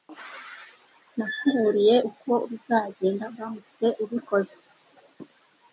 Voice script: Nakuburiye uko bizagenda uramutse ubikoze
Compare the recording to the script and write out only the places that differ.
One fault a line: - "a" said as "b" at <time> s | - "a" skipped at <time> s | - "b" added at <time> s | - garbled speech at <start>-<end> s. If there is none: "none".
none